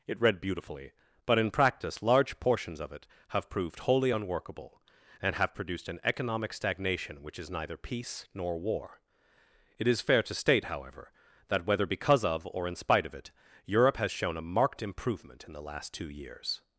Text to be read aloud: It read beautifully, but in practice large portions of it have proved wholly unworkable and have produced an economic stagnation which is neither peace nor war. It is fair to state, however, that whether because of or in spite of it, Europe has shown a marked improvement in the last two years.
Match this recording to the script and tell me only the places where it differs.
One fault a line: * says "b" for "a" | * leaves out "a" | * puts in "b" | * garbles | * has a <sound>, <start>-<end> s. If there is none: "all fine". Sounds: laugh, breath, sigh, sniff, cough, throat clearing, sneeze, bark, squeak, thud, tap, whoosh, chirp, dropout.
all fine